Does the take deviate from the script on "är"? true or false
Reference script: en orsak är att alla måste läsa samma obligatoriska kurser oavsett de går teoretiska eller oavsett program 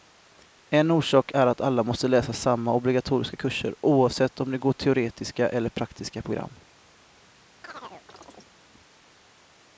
false